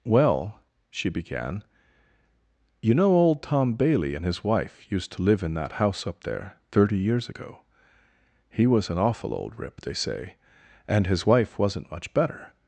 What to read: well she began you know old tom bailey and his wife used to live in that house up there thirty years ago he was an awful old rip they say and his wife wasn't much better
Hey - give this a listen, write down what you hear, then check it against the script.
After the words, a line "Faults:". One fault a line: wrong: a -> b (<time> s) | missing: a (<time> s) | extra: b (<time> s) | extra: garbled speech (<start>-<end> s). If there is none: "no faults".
well she began you know old tom bailey and his wife used to live in that house up there thirty years ago he was an awful old rip they say and his wife wasn't much better
Faults:
no faults